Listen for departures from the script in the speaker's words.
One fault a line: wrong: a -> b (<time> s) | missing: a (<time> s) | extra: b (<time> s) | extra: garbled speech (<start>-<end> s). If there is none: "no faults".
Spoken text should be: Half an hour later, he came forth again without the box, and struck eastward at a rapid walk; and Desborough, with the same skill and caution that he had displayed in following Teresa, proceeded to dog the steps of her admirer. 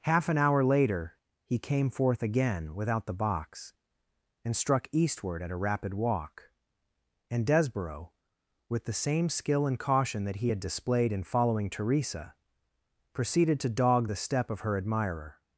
wrong: steps -> step (14.1 s)